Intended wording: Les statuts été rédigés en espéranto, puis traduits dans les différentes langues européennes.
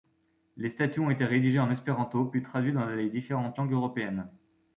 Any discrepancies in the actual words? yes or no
yes